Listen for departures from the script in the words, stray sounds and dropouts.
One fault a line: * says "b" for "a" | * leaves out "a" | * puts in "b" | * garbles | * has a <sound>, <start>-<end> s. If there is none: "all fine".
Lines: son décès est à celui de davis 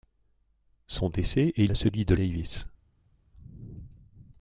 all fine